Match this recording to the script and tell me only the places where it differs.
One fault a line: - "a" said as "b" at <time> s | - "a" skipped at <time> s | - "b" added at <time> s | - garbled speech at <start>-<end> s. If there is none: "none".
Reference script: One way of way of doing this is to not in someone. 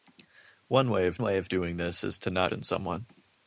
none